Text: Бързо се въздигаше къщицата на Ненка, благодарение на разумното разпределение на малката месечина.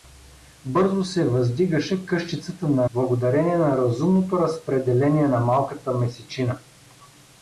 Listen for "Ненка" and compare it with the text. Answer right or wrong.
wrong